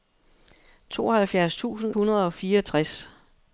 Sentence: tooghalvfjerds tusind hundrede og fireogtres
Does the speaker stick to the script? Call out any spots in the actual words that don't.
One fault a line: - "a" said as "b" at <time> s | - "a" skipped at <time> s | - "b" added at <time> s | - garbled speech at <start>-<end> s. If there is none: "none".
none